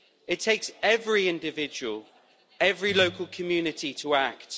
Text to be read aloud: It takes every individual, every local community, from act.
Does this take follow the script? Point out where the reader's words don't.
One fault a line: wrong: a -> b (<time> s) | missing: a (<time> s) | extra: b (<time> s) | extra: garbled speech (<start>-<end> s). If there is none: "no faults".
wrong: from -> to (3.9 s)